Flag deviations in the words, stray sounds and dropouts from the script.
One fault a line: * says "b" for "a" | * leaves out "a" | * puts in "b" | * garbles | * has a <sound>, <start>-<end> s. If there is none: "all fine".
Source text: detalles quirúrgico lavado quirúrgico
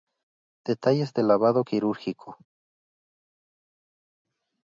* says "del" for "quirúrgico"